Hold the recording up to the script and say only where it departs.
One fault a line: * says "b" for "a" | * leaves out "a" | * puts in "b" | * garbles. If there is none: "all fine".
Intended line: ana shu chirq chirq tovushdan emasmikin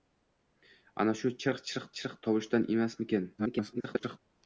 * puts in "chirq"
* garbles